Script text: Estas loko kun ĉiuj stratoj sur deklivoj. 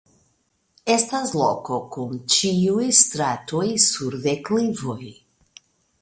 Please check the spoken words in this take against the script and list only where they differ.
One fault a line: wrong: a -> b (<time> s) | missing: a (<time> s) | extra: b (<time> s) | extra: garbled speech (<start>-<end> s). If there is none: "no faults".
no faults